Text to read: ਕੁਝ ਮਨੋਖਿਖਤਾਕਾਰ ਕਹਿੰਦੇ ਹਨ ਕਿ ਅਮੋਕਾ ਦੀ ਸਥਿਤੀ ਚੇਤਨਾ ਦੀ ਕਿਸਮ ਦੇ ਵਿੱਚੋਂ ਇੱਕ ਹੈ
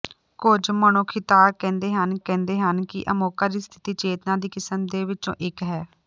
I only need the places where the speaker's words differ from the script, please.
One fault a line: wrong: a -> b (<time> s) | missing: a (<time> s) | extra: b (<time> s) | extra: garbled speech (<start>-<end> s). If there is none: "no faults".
extra: ਕਹਿੰਦੇ ਹਨ (2.2 s)